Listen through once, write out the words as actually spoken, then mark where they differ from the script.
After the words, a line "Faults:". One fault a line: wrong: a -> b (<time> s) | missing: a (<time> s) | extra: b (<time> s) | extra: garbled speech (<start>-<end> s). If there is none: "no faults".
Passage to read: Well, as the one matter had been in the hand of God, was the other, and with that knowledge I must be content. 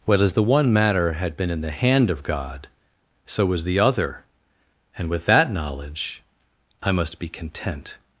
Well, as the one matter had been in the hand of God, so was the other, and with that knowledge I must be content.
Faults:
extra: so (3.2 s)